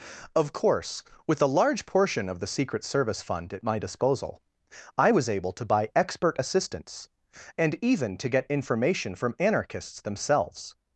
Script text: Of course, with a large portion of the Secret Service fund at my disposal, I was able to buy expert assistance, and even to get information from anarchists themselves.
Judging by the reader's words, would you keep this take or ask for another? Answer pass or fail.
pass